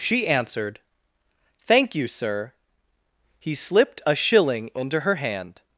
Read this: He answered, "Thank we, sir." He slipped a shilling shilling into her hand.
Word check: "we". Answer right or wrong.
wrong